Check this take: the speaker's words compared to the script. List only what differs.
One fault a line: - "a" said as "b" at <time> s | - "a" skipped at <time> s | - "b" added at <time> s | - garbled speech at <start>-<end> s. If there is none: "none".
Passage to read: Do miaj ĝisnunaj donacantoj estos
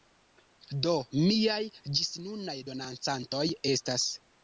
- "estos" said as "estas" at 3.7 s